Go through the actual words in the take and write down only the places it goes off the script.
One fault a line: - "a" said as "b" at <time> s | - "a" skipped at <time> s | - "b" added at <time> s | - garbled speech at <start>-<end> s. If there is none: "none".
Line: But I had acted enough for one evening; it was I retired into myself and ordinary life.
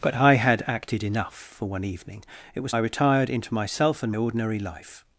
none